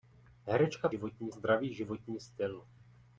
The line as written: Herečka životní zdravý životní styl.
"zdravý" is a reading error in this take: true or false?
false